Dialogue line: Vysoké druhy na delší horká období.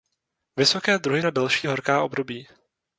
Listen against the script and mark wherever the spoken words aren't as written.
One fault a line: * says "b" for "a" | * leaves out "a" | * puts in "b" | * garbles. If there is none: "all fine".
all fine